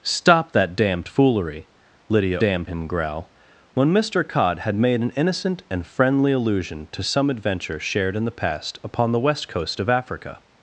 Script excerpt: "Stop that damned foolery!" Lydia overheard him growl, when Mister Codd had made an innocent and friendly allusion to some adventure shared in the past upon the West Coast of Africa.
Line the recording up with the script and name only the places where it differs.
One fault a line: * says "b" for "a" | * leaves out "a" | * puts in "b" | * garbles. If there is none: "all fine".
* says "damned" for "overheard"